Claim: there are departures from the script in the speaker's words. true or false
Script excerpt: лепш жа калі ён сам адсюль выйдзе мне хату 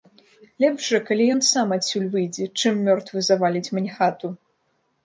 true